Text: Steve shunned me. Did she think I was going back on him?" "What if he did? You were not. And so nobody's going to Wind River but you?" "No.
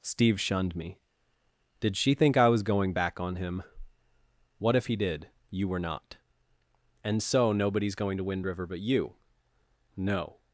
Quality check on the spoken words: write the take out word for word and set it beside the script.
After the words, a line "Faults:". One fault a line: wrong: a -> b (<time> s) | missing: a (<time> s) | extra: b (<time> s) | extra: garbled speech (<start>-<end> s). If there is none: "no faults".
Steve shunned me. Did she think I was going back on him?" "What if he did? You were not. And so nobody's going to Wind River but you?" "No.
Faults:
no faults